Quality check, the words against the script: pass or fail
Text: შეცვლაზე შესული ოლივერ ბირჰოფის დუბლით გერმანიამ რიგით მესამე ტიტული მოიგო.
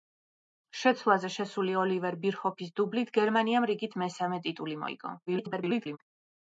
fail